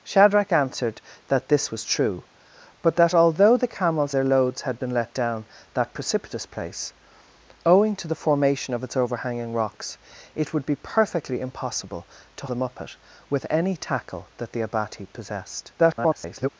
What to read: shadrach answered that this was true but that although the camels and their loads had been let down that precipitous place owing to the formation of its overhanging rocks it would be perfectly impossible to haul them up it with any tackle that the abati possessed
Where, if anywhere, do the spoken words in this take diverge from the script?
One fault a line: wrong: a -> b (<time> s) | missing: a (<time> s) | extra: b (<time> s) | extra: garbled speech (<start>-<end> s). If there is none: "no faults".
missing: and (4.2 s)
missing: haul (12.5 s)
extra: garbled speech (15.8-16.5 s)